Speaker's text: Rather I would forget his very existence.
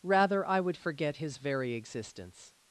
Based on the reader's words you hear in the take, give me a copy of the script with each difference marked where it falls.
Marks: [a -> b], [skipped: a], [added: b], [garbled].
Rather I would forget his very existence.